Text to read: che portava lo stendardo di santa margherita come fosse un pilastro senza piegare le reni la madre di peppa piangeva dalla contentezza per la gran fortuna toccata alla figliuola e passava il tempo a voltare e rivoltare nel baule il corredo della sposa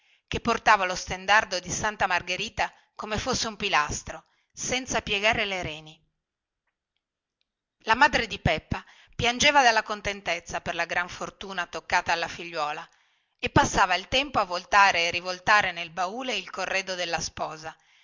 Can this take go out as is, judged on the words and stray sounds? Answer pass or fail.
pass